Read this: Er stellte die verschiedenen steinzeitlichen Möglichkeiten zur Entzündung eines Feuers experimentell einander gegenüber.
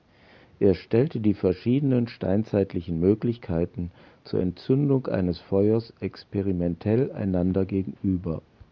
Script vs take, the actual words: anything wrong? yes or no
no